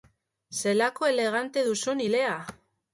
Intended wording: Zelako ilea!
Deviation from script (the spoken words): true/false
true